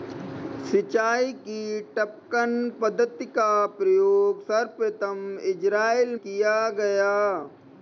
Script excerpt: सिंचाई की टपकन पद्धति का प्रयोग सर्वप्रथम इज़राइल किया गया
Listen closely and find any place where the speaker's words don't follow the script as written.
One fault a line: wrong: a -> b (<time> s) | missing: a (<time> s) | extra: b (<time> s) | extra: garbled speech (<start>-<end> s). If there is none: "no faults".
no faults